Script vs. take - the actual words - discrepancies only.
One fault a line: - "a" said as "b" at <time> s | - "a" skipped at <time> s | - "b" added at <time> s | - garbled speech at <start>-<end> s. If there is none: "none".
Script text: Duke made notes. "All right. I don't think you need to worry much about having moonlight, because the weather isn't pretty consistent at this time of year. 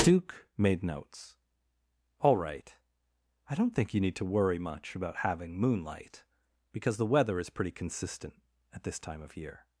- "isn't" said as "is" at 7.4 s